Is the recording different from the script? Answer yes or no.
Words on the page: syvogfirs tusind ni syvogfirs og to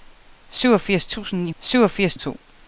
no